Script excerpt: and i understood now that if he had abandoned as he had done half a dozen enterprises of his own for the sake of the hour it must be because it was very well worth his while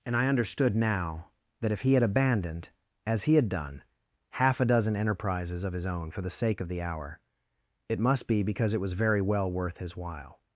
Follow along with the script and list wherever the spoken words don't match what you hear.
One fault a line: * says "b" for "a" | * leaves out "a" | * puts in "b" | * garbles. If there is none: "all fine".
all fine